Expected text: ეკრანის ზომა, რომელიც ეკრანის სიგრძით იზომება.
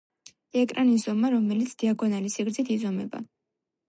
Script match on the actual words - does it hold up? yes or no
no